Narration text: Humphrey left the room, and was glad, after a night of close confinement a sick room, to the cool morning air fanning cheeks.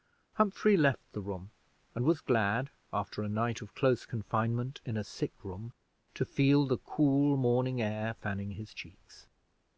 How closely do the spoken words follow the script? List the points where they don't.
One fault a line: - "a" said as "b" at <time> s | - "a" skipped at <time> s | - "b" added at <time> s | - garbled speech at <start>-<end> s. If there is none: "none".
- "in" added at 4.8 s
- "feel" added at 6.2 s
- "his" added at 8.5 s